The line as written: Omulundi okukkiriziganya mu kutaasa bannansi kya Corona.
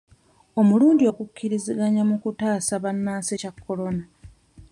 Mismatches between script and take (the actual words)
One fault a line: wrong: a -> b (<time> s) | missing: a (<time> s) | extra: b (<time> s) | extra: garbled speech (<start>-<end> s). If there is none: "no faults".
no faults